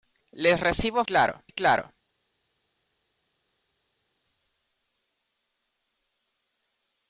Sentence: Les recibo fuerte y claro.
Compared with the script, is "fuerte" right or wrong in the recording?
wrong